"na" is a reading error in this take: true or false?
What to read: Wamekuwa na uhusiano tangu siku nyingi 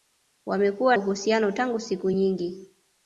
true